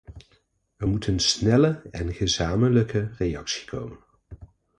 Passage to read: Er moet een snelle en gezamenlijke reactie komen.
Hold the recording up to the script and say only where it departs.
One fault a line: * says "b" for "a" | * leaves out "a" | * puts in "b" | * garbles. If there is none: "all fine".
all fine